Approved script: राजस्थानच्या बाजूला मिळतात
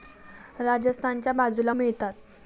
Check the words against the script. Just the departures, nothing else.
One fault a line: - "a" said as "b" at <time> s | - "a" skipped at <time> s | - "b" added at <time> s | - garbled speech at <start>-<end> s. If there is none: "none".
none